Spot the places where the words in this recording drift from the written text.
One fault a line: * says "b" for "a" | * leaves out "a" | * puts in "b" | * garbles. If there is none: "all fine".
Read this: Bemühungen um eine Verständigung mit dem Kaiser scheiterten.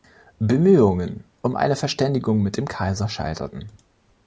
all fine